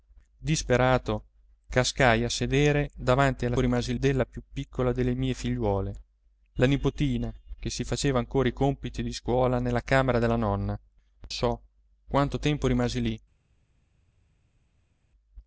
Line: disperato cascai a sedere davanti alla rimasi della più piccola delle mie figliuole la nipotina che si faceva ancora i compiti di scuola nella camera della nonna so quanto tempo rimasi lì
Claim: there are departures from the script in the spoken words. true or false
false